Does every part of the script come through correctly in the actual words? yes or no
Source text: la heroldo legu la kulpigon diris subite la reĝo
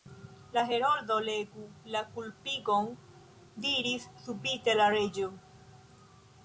yes